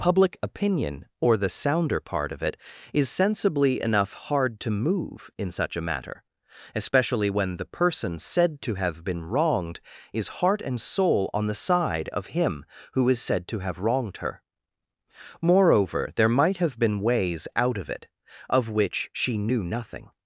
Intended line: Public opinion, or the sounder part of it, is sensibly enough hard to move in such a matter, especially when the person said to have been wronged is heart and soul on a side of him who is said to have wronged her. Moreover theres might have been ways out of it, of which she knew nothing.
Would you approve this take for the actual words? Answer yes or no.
no